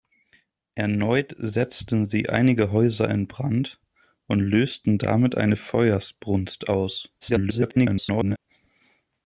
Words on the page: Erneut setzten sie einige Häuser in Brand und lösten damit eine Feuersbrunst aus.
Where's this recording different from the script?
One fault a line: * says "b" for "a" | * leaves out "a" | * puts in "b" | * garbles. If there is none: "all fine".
* garbles